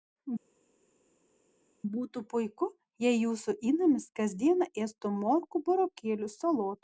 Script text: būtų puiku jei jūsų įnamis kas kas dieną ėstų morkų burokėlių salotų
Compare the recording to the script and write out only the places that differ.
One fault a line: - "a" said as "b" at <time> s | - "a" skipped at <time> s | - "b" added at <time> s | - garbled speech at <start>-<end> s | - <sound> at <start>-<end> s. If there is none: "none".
- "kas" skipped at 4.3 s